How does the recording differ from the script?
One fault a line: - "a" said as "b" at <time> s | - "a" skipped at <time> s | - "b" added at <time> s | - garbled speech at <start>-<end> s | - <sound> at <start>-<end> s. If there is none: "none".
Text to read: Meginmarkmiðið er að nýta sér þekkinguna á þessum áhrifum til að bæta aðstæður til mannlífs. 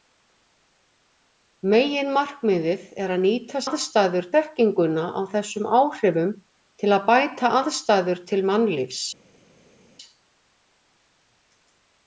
- "sér" said as "aðstæður" at 3.7 s